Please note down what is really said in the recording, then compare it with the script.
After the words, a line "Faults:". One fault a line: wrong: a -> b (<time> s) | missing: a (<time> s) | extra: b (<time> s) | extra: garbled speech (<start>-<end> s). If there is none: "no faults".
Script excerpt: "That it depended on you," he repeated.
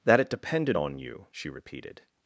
"That it depended on you," she repeated.
Faults:
wrong: he -> she (1.3 s)